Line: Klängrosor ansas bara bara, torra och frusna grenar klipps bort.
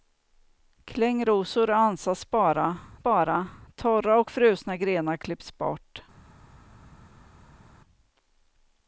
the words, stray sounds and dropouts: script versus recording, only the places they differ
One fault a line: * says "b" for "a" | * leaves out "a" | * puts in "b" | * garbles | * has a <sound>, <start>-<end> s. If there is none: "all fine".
all fine